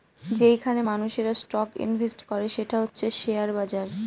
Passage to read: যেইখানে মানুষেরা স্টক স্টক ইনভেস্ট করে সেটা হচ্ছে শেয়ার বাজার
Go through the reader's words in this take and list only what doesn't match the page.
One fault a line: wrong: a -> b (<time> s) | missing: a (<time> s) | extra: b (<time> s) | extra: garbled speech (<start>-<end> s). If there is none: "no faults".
missing: স্টক (1.7 s)